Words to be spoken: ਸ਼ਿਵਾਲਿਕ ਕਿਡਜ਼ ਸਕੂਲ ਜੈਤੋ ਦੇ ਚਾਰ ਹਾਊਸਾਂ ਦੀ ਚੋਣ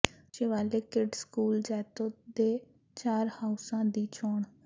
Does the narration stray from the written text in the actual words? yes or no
no